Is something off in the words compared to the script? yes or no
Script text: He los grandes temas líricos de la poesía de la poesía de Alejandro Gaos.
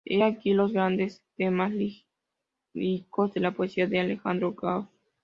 yes